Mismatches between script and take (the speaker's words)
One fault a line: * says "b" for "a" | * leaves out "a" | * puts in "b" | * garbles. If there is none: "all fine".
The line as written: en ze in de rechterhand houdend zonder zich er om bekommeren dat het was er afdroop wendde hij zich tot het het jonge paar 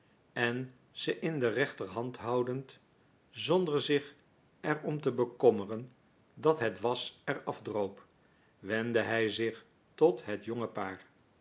* puts in "te"
* leaves out "het"